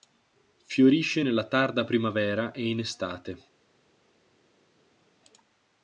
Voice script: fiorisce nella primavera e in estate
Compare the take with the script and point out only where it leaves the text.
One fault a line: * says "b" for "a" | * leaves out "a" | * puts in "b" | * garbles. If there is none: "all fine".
* puts in "tarda"